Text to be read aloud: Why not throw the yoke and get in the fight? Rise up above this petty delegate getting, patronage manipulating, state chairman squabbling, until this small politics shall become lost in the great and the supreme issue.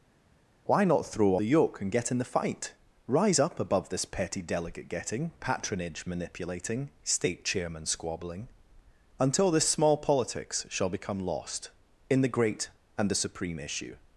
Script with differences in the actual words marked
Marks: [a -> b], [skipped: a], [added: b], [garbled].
Why not throw the yoke and get in the fight? Rise up above this petty delegate getting, patronage manipulating, state chairman squabbling, until this small politics shall become lost in the great and the supreme issue.